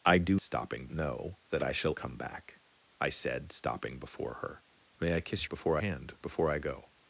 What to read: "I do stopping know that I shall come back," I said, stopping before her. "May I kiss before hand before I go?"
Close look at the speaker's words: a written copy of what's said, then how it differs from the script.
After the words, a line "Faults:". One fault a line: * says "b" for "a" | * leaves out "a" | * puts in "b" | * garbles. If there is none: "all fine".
"I do stopping know that I shall come back," I said, stopping before her. "May I kiss before hand before I go?"
Faults:
all fine